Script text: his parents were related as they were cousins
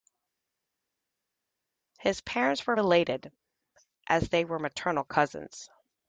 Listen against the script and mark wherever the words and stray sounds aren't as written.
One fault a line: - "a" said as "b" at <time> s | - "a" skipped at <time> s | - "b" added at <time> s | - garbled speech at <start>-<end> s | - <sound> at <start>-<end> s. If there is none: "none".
- "maternal" added at 4.6 s